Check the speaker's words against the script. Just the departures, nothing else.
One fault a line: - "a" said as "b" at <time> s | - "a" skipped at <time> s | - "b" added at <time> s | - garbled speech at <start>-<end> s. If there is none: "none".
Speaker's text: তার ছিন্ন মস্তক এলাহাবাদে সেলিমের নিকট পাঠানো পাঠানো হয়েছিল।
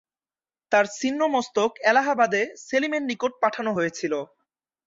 - "পাঠানো" skipped at 3.7 s